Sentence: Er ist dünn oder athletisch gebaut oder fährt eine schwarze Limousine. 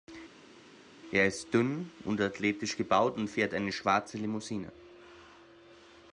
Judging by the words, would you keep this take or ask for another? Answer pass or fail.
fail